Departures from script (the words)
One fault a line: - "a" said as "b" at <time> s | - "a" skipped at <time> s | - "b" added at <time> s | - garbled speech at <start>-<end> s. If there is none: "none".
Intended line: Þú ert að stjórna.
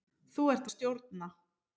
none